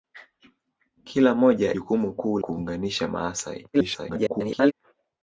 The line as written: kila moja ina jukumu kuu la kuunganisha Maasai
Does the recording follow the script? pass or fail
fail